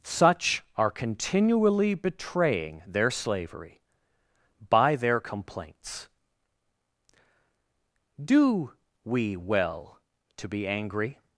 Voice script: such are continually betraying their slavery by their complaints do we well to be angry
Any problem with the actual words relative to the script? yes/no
no